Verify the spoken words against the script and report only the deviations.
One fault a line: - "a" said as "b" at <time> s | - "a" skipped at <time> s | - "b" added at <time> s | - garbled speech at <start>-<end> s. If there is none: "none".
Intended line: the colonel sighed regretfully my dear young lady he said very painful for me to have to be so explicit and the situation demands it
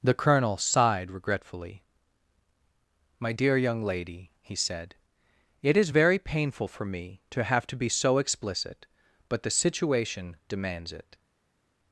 - "it is" added at 5.6 s
- "and" said as "but" at 9.3 s